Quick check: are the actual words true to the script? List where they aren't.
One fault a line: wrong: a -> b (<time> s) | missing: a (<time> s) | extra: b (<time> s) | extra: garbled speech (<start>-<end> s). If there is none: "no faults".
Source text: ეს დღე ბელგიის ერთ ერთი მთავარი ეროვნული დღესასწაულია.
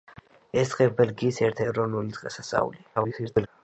missing: ერთი მთავარი (1.6 s)
extra: garbled speech (3.0-3.5 s)